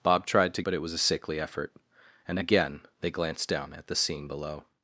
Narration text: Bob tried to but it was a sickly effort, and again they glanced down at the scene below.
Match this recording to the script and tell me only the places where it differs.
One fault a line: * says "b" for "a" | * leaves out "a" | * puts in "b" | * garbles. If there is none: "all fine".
all fine